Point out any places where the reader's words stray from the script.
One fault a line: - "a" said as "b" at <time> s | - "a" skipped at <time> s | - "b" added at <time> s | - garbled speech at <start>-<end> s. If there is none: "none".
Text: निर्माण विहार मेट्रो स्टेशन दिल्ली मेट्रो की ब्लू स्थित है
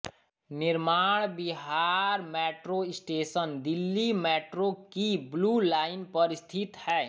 - "लाइन पर" added at 5.6 s